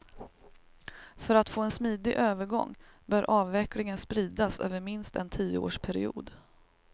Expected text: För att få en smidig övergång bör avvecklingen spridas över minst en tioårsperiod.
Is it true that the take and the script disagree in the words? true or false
false